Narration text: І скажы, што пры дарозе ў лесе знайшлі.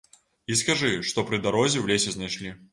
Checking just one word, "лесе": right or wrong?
right